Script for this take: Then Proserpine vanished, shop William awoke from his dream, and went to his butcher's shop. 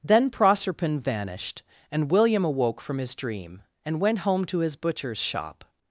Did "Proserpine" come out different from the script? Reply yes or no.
no